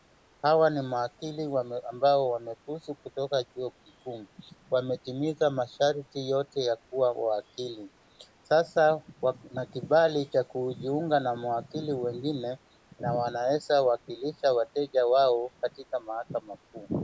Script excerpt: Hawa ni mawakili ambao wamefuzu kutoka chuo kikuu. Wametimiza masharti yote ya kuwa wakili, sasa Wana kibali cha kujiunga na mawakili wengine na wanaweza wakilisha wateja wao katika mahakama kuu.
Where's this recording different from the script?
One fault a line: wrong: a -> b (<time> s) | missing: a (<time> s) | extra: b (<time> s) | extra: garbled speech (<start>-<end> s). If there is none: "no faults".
no faults